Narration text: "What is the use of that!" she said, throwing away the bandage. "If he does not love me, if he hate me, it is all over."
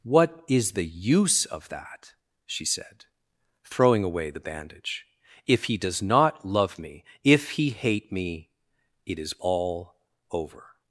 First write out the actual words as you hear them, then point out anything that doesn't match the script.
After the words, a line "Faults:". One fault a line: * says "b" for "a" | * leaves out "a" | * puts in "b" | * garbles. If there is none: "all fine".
"What is the use of that!" she said, throwing away the bandage. "If he does not love me, if he hate me, it is all over."
Faults:
all fine